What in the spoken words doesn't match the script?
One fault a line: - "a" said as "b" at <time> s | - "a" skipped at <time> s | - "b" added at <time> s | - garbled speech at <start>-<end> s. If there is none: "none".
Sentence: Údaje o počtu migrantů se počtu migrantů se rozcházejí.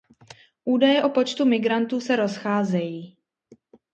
- "počtu migrantů se" skipped at 2.2 s